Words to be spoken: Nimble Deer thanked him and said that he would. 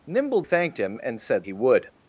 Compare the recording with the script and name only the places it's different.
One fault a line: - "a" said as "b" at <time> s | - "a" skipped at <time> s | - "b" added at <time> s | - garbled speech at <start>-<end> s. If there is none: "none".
- "Deer" skipped at 0.4 s
- "that" skipped at 1.4 s